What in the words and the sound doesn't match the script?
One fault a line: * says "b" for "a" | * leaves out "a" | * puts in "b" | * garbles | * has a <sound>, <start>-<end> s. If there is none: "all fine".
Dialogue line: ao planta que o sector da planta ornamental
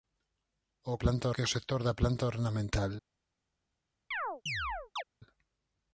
* has a chirp, 4.1-5.0 s